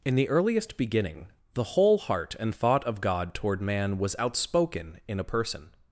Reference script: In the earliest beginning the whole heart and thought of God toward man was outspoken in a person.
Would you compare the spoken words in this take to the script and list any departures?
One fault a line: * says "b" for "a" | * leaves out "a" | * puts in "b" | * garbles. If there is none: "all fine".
all fine